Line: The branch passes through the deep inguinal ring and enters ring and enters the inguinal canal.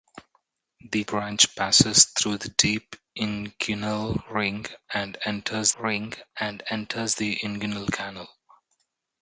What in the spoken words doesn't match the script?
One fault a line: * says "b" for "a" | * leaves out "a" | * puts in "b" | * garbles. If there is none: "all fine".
all fine